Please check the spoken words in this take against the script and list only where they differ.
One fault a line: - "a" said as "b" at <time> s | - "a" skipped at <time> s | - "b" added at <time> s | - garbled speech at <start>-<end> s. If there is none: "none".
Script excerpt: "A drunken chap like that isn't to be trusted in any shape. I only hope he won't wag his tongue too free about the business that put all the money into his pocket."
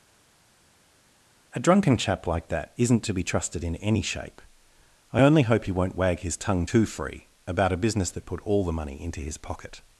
- "the" said as "a" at 7.7 s